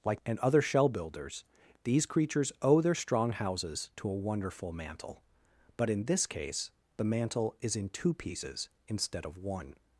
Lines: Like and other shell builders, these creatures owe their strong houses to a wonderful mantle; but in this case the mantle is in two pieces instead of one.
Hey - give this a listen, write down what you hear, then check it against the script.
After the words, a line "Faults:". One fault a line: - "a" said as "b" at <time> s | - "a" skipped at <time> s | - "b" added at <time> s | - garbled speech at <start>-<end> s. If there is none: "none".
Like and other shell builders, these creatures owe their strong houses to a wonderful mantle; but in this case the mantle is in two pieces instead of one.
Faults:
none